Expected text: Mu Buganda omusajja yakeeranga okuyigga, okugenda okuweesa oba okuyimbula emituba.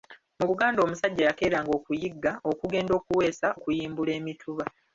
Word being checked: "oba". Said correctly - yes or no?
no